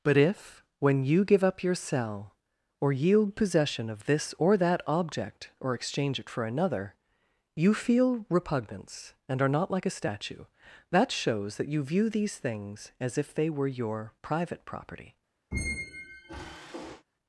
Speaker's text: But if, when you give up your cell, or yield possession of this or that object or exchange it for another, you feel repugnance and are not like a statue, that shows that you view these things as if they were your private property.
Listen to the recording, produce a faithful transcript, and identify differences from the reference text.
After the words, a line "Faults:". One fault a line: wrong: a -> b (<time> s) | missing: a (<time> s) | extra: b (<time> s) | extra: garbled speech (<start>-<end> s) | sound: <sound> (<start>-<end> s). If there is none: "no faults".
But if, when you give up your cell, or yield possession of this or that object or exchange it for another, you feel repugnance and are not like a statue, that shows that you view these things as if they were your private property.
Faults:
sound: squeak (15.5-17.0 s)